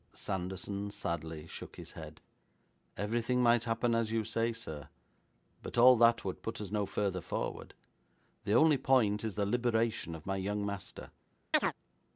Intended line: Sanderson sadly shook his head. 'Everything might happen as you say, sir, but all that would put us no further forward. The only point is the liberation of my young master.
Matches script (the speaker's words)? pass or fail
pass